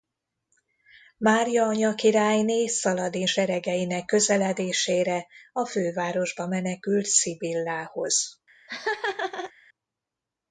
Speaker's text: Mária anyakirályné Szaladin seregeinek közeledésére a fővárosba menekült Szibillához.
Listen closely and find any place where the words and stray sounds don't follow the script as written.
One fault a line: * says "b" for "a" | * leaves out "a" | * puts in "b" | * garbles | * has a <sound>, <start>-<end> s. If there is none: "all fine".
* has a laugh, 8.7-9.5 s